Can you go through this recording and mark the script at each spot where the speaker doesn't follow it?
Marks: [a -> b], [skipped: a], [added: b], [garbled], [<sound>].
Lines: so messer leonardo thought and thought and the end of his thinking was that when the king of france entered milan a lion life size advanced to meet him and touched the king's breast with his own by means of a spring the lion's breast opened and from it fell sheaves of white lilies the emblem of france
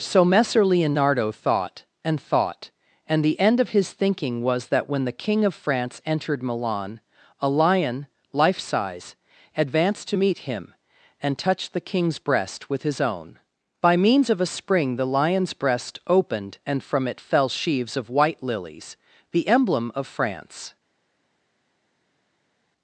so messer leonardo thought and thought and the end of his thinking was that when the king of france entered milan a lion life size advanced to meet him and touched the king's breast with his own by means of a spring the lion's breast opened and from it fell sheaves of white lilies the emblem of france